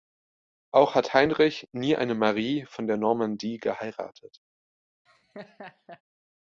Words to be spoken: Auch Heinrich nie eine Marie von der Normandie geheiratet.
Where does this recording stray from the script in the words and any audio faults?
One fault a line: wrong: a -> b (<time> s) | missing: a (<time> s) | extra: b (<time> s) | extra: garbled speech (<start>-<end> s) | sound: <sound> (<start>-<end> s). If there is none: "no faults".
extra: hat (0.9 s)
sound: laugh (5.1-6.0 s)